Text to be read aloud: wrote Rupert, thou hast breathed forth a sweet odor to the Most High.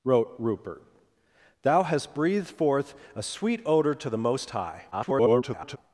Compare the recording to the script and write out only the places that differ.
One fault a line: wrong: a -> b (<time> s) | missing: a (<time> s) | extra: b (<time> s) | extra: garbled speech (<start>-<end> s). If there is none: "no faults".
extra: garbled speech (4.9-5.8 s)